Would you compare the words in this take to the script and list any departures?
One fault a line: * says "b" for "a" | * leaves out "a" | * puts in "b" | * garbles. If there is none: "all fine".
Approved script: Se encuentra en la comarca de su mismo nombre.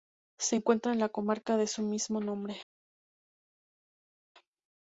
all fine